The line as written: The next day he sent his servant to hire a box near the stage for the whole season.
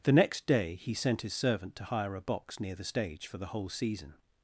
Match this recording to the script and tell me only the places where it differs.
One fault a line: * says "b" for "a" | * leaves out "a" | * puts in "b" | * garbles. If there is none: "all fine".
all fine